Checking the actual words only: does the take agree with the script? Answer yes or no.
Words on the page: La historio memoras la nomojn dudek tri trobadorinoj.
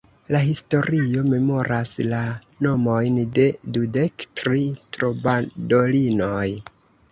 no